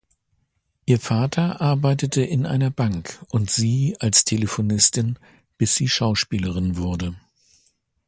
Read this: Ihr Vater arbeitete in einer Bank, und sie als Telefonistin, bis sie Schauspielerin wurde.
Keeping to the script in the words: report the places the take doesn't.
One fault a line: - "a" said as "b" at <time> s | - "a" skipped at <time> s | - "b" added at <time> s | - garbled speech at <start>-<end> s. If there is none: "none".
none